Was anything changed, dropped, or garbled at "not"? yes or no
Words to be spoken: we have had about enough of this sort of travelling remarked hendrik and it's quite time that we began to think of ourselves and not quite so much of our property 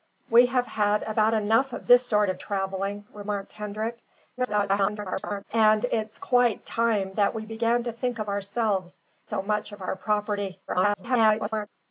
yes